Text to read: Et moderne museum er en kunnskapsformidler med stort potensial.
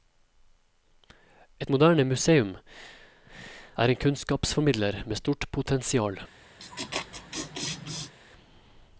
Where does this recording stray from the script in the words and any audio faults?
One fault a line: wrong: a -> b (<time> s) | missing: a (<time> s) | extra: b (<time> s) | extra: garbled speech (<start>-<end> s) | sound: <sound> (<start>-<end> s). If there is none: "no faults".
sound: laugh (6.6-8.1 s)